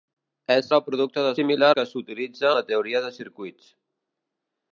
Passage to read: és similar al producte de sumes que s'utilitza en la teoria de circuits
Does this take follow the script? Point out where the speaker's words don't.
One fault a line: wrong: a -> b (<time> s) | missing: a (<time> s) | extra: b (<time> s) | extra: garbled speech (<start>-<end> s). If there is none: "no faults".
missing: similar (0.7 s)
wrong: sumes -> similar (1.4 s)
missing: en (2.5 s)